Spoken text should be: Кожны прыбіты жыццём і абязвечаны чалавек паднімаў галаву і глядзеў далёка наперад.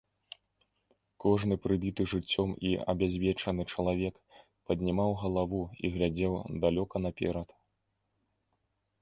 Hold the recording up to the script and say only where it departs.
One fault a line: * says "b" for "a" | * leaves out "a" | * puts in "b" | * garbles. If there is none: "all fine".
all fine